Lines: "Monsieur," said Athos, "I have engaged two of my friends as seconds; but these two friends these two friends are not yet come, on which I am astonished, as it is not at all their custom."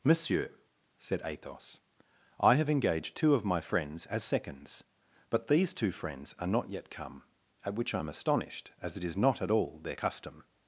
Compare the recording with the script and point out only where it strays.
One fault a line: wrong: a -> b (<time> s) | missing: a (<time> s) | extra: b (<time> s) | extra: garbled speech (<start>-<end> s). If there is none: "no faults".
missing: these two friends (6.3 s)
wrong: on -> at (7.6 s)